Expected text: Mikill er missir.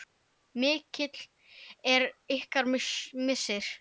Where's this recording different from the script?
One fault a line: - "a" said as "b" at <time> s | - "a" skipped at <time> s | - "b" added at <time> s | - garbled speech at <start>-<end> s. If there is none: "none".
- "ykkar" added at 2.4 s